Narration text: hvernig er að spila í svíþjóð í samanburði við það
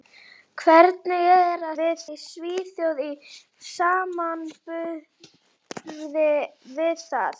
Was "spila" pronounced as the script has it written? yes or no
no